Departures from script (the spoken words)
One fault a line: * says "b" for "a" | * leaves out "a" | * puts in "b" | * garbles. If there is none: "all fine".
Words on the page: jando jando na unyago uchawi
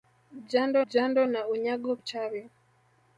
all fine